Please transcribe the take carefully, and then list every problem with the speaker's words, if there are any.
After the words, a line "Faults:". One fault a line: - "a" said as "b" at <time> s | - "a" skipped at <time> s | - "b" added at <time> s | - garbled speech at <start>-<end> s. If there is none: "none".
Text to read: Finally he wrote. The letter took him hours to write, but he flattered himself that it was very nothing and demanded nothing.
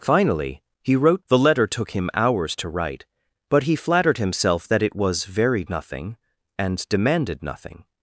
Finally he wrote. The letter took him hours to write, but he flattered himself that it was very nothing and demanded nothing.
Faults:
none